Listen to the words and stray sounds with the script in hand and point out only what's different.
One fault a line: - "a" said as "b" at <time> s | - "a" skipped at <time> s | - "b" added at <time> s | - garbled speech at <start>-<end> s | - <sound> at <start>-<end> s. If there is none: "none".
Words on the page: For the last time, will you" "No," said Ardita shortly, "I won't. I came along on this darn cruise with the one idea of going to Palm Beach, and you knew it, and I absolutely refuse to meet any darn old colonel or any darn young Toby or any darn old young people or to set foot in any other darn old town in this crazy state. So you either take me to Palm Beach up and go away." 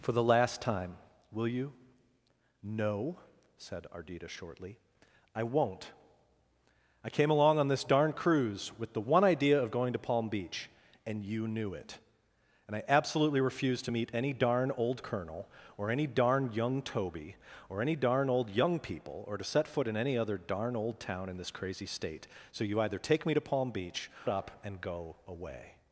none